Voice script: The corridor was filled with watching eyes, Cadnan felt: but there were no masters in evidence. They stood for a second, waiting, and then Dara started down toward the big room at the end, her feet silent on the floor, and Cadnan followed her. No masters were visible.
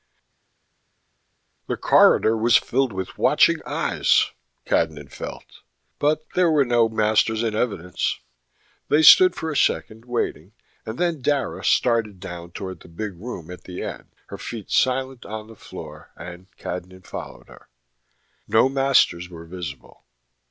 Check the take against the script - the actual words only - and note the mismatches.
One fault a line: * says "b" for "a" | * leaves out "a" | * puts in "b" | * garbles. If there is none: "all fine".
all fine